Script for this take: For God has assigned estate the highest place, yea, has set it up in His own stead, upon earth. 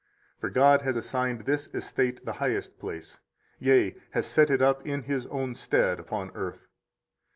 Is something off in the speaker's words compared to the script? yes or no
yes